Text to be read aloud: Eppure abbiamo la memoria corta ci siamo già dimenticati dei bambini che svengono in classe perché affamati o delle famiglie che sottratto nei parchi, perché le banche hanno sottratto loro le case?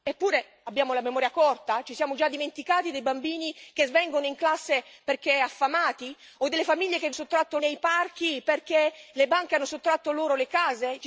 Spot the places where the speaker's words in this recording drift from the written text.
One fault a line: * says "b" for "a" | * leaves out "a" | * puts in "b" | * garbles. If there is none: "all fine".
all fine